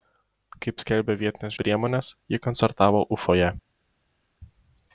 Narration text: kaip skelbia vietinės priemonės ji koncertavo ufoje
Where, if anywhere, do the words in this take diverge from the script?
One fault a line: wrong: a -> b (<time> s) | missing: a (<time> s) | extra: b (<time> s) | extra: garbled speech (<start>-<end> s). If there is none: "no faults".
no faults